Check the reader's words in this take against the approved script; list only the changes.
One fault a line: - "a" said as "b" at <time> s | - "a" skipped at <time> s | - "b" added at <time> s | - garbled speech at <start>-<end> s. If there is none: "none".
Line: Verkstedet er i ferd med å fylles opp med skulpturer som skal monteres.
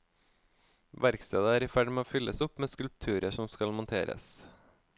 none